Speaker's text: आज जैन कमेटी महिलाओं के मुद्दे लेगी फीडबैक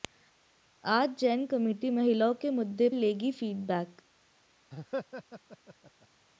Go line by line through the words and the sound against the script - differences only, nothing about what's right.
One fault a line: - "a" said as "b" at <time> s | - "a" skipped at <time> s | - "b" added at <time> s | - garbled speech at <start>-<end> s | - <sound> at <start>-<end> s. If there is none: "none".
- laugh at 4.7-6.1 s